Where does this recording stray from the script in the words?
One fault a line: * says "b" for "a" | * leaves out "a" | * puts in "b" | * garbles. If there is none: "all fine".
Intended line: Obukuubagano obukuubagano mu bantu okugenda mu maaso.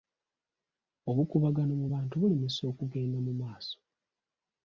* leaves out "obukuubagano"
* puts in "bulemesa"